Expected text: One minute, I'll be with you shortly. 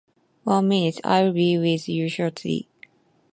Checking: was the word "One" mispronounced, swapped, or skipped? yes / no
no